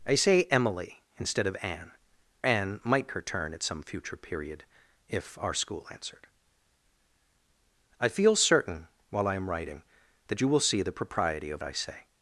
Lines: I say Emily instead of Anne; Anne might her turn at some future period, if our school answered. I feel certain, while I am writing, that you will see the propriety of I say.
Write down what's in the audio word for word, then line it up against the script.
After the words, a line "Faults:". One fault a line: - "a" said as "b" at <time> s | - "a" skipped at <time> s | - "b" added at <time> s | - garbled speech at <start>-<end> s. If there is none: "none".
I say Emily instead of Anne; Anne might her turn at some future period, if our school answered. I feel certain, while I am writing, that you will see the propriety of I say.
Faults:
none